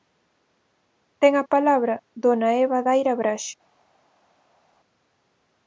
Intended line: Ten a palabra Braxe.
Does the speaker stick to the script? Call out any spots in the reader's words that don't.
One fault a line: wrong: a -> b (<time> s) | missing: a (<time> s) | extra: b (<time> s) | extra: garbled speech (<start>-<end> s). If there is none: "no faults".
extra: dona Eva Daira (2.2 s)